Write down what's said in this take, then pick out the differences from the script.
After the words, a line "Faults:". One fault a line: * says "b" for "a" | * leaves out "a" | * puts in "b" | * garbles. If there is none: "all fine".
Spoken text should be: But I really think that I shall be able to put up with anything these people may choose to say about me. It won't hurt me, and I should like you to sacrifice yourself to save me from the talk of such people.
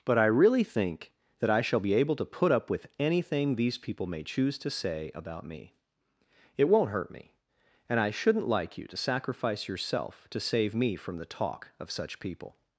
But I really think that I shall be able to put up with anything these people may choose to say about me. It won't hurt me, and I shouldn't like you to sacrifice yourself to save me from the talk of such people.
Faults:
* says "shouldn't" for "should"